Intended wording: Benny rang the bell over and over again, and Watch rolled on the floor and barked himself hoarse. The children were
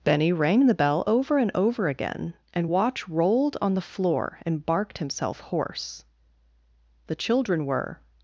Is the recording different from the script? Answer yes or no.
no